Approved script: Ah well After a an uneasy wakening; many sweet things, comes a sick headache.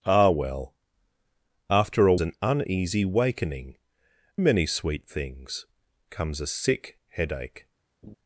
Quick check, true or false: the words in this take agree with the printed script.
true